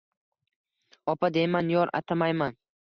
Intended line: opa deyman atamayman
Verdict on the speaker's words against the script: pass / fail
fail